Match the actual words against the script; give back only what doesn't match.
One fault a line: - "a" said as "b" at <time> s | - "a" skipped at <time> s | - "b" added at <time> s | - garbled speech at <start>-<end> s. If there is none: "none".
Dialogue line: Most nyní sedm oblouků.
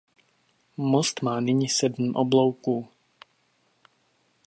- "má" added at 1.2 s